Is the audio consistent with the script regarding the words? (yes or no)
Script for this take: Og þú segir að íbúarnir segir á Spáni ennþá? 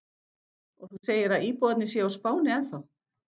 no